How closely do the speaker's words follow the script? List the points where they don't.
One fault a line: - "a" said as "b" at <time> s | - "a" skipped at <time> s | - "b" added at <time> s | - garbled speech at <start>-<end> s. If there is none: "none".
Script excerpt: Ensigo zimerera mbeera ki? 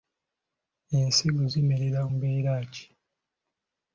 none